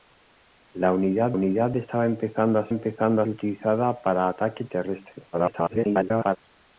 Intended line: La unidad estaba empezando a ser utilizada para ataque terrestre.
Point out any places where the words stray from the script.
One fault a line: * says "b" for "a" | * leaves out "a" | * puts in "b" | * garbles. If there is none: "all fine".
* puts in "unidad"
* says "empezando" for "ser"
* garbles